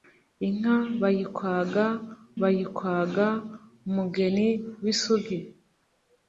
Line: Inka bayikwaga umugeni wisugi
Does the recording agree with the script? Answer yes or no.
no